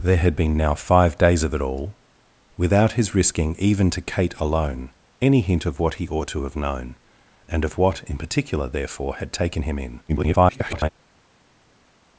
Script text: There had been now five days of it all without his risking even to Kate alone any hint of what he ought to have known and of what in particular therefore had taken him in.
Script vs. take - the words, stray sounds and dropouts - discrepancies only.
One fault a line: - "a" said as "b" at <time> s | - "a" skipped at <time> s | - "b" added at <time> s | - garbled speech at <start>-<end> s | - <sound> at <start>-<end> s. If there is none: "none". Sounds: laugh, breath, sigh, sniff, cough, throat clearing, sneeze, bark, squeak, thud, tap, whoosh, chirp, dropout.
- garbled speech at 10.1-10.9 s